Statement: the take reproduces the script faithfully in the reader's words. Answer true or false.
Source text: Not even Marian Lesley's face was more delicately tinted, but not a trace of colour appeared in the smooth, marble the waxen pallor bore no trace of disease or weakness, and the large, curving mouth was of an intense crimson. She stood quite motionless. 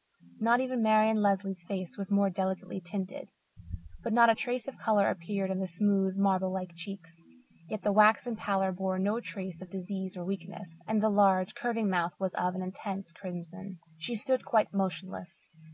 false